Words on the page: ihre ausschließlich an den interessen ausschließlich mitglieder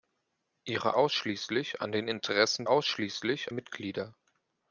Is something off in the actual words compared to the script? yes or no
no